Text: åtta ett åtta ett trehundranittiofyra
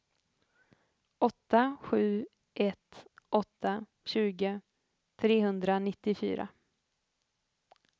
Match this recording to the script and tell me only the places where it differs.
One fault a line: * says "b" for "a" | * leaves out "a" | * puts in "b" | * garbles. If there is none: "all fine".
* puts in "sju"
* says "tjugo" for "ett"